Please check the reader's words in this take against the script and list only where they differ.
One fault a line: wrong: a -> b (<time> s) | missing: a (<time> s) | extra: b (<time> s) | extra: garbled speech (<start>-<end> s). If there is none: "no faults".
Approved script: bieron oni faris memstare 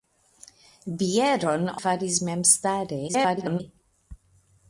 missing: oni (1.7 s)
extra: garbled speech (3.1-3.6 s)